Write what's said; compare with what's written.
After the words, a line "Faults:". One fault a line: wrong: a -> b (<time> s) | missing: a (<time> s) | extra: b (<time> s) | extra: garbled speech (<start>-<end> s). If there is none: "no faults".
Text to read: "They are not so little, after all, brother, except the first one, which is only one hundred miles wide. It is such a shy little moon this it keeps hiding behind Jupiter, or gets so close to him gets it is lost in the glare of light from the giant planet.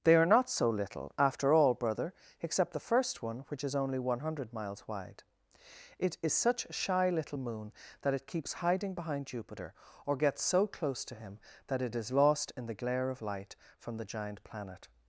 "They are not so little, after all, brother, except the first one, which is only one hundred miles wide. It is such a shy little moon that it keeps hiding behind Jupiter, or gets so close to him that it is lost in the glare of light from the giant planet.
Faults:
wrong: this -> that (8.0 s)
wrong: gets -> that (11.7 s)